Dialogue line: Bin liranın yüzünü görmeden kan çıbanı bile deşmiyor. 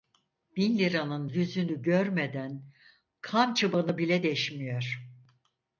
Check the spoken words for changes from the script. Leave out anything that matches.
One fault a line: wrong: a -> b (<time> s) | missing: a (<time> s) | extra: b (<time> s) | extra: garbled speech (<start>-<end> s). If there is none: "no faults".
no faults